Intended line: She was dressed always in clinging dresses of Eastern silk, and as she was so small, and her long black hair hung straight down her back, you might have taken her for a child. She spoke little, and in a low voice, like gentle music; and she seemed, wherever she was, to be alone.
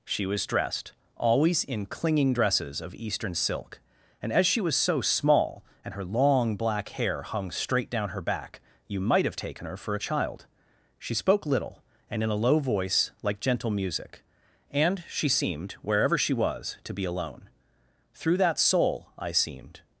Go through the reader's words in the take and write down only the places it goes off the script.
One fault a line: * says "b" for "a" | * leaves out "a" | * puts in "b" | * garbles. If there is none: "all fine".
* puts in "Through that soul I seemed"